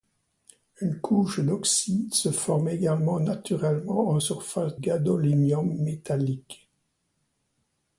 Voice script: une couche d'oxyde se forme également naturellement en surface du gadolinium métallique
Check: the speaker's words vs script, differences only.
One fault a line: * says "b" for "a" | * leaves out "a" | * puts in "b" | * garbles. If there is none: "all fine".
* leaves out "du"